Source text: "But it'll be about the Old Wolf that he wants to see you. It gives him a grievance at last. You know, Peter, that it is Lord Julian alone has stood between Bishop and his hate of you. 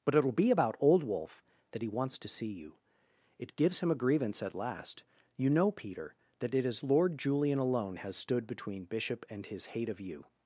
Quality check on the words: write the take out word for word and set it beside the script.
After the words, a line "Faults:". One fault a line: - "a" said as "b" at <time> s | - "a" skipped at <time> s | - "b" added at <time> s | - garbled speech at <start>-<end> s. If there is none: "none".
"But it'll be about Old Wolf that he wants to see you. It gives him a grievance at last. You know, Peter, that it is Lord Julian alone has stood between Bishop and his hate of you.
Faults:
- "the" skipped at 0.8 s